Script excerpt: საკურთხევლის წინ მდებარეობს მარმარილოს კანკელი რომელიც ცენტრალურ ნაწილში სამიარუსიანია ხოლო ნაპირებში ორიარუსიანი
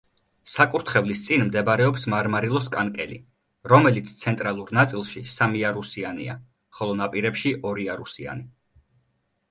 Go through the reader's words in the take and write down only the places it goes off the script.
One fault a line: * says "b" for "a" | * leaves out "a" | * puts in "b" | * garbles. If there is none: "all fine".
all fine